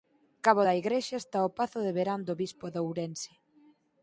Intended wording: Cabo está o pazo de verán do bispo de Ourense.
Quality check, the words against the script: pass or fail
fail